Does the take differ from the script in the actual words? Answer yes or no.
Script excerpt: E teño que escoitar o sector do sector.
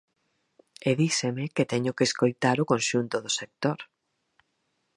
yes